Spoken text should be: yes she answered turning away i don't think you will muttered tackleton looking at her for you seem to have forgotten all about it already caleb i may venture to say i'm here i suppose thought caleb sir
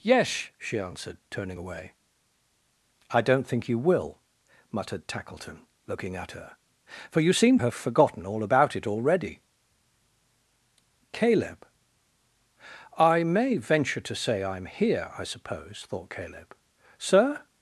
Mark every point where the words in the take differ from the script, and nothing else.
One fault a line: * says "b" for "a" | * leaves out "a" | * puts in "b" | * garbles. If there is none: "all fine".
* leaves out "to"